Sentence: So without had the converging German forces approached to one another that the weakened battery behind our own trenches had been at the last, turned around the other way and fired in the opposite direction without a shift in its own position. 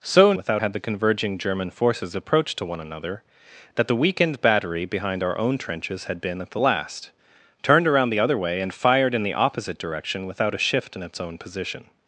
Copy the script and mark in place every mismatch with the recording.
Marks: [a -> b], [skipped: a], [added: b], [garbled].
So without had the converging German forces approached to one another that the weakened battery behind our own trenches had been at the last, turned around the other way and fired in the opposite direction without a shift in its own position.